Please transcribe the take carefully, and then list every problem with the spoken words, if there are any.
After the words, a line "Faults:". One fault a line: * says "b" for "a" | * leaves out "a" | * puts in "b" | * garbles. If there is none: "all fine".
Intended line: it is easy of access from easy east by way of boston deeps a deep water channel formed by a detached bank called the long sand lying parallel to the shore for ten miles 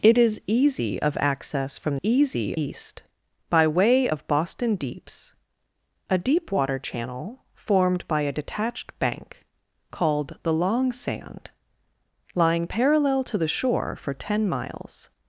it is easy of access from easy east by way of boston deeps a deep water channel formed by a detached bank called the long sand lying parallel to the shore for ten miles
Faults:
all fine